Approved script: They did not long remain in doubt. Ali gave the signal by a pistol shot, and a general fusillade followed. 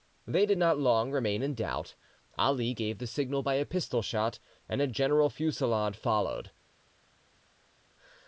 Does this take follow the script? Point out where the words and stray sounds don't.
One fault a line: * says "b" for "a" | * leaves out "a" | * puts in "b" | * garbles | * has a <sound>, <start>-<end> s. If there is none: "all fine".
all fine